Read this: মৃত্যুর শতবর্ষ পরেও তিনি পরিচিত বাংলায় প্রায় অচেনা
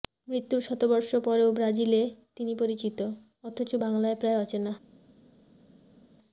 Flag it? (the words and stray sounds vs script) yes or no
yes